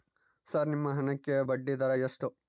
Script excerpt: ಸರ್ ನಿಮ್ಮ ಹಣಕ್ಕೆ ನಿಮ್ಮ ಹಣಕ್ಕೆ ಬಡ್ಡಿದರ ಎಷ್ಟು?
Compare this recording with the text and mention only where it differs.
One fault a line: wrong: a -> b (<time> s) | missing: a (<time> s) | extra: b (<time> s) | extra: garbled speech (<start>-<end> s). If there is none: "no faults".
missing: ನಿಮ್ಮ ಹಣಕ್ಕೆ (1.4 s)